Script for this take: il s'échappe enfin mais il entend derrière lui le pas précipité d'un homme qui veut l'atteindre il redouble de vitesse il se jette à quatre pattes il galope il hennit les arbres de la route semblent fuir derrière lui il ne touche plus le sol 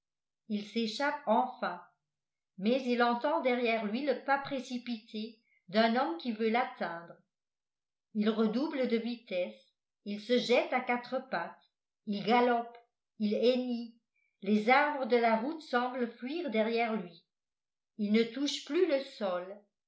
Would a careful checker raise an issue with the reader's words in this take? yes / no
no